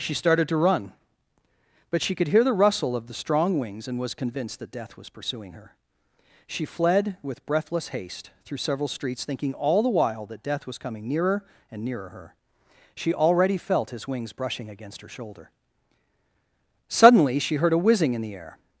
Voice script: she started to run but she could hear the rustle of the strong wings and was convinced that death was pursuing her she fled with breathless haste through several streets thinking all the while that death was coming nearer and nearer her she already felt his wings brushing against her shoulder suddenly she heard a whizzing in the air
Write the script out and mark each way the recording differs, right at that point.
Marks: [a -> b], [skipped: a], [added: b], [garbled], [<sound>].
she started to run but she could hear the rustle of the strong wings and was convinced that death was pursuing her she fled with breathless haste through several streets thinking all the while that death was coming nearer and nearer her she already felt his wings brushing against her shoulder suddenly she heard a whizzing in the air